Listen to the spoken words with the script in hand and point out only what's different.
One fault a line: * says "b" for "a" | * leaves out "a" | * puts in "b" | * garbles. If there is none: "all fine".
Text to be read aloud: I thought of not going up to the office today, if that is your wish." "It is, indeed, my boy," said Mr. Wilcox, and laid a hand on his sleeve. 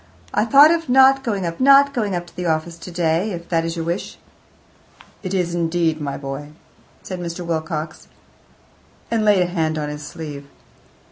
* puts in "not going up"